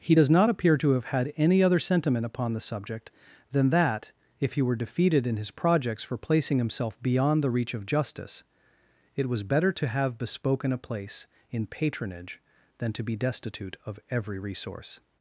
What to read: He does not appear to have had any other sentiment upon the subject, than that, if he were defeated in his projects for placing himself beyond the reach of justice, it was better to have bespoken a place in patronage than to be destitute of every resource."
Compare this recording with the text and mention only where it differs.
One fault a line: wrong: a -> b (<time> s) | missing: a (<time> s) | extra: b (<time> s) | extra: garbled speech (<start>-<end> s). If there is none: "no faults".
no faults